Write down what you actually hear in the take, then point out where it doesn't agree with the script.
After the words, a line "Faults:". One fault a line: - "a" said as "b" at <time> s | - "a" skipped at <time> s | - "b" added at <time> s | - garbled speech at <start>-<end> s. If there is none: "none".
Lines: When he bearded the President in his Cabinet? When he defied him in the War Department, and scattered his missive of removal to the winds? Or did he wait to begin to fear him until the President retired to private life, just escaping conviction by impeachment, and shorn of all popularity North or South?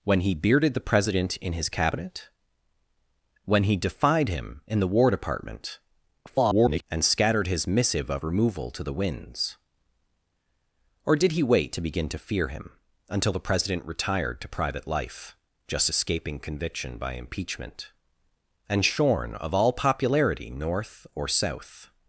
When he bearded the President in his Cabinet? When he defied him in the War Department, [garbled] and scattered his missive of removal to the winds? Or did he wait to begin to fear him until the President retired to private life, just escaping conviction by impeachment, and shorn of all popularity North or South?
Faults:
- garbled speech at 6.3-6.8 s